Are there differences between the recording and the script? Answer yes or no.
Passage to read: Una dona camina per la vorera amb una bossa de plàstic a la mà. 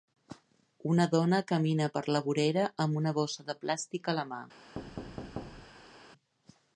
no